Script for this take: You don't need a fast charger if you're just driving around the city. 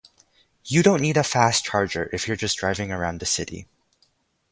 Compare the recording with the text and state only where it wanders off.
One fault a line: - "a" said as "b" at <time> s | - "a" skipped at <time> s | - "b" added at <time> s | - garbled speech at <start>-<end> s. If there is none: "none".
none